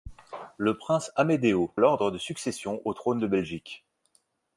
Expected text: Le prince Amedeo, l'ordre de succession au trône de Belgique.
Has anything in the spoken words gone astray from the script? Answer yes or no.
no